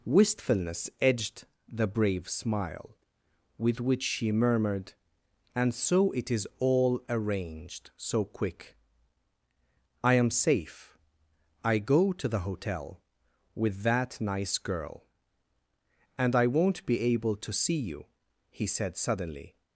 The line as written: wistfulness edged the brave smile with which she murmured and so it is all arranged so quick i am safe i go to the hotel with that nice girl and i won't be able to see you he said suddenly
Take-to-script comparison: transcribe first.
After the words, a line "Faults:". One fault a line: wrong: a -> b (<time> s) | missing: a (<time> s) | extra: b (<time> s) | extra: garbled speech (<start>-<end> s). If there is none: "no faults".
wistfulness edged the brave smile with which she murmured and so it is all arranged so quick i am safe i go to the hotel with that nice girl and i won't be able to see you he said suddenly
Faults:
no faults